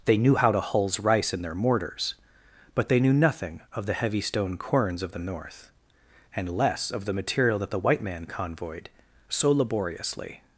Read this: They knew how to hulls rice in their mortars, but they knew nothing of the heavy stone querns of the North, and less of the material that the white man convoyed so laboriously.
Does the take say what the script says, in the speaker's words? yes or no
yes